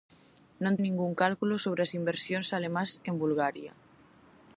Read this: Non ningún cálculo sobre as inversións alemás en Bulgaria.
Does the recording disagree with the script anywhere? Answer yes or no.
no